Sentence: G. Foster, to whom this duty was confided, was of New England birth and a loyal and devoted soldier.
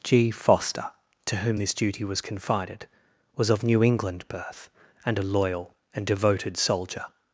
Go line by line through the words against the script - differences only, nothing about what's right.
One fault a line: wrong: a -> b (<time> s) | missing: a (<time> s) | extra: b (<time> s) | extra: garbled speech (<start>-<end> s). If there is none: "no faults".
no faults